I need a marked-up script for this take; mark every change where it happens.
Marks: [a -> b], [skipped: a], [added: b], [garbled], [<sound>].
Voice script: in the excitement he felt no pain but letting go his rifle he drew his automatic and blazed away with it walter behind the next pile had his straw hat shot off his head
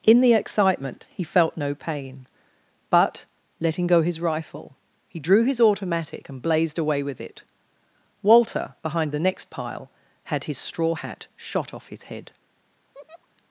in the excitement he felt no pain but letting go his rifle he drew his automatic and blazed away with it walter behind the next pile had his straw hat shot off his head [laugh]